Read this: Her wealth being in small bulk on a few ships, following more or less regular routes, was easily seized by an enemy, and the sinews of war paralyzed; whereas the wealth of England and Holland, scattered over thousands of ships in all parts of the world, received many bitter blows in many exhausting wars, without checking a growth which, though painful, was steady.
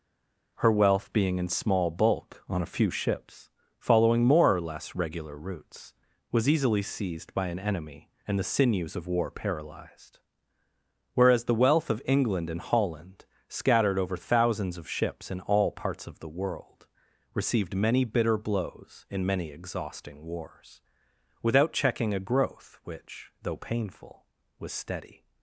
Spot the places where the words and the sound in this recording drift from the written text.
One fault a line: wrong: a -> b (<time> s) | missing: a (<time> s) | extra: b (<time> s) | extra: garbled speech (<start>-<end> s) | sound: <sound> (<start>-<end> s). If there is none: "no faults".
no faults